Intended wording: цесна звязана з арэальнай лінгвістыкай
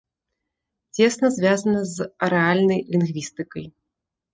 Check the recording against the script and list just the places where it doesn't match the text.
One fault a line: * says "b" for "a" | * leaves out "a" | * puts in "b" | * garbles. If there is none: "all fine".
all fine